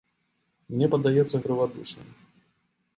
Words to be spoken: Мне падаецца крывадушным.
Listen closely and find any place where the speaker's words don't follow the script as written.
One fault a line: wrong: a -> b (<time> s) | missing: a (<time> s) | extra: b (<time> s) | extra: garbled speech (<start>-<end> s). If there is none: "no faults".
no faults